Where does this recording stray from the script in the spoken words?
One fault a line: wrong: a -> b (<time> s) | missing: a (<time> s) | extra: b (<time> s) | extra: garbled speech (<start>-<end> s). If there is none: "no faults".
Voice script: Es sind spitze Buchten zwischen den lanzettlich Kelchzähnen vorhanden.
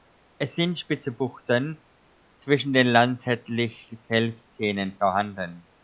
no faults